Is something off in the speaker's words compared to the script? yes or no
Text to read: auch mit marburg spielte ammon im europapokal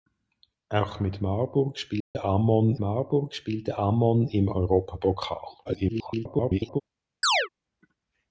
yes